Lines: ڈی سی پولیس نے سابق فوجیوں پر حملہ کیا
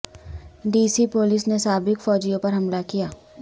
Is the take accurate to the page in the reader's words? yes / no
yes